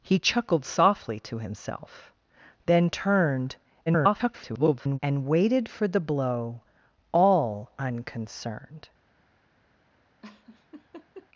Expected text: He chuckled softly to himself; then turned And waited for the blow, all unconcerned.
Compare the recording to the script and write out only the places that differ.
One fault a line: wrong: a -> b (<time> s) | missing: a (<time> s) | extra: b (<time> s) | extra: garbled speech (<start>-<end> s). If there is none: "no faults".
extra: garbled speech (3.9-5.0 s)